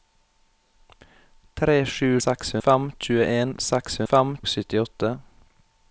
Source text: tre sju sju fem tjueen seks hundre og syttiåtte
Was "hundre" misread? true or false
true